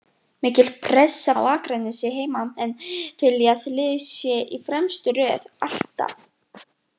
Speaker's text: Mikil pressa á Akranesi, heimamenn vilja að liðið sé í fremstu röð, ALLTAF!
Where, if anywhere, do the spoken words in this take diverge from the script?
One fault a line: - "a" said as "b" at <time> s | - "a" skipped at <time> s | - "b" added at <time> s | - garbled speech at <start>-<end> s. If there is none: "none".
none